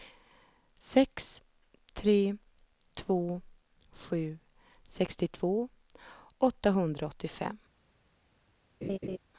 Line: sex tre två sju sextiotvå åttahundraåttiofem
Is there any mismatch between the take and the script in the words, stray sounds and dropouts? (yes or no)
yes